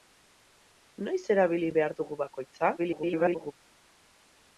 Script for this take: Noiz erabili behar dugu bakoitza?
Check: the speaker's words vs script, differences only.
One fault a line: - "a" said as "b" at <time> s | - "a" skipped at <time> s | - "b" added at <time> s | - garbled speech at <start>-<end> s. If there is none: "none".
- garbled speech at 2.8-3.5 s